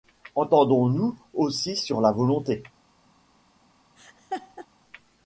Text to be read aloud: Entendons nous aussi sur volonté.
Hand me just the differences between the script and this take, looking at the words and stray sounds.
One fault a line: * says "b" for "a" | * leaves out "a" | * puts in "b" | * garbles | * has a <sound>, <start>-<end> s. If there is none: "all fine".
* puts in "la"
* has a laugh, 4.0-4.7 s